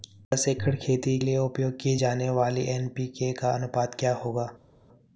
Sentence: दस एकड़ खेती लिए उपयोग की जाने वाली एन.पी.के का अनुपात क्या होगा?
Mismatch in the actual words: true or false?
false